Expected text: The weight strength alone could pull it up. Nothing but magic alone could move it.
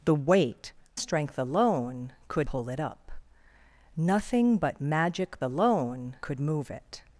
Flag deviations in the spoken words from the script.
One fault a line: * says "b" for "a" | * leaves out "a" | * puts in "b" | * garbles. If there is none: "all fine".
all fine